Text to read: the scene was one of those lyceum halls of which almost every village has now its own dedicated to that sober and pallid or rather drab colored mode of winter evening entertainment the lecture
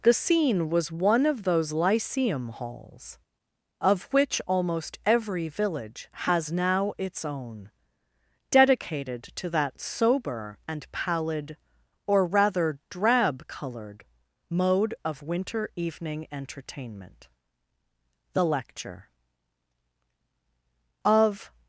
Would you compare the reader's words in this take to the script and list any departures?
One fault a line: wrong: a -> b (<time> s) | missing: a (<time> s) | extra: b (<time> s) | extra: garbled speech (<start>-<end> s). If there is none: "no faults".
extra: of (21.0 s)